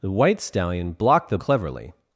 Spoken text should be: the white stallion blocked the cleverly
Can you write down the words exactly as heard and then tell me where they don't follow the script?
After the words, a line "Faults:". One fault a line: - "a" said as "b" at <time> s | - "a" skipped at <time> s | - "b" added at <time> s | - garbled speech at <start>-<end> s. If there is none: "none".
the white stallion blocked the cleverly
Faults:
none